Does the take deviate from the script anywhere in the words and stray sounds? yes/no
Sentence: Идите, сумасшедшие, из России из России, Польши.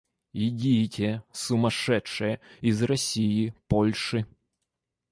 yes